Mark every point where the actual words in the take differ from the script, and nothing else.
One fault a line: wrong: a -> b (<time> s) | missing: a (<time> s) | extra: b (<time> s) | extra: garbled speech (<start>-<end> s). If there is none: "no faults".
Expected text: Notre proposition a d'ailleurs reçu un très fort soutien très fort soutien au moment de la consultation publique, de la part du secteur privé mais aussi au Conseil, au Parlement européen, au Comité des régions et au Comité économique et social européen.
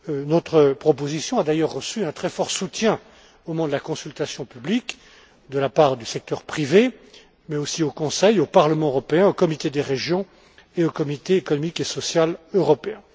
missing: très fort soutien (3.0 s)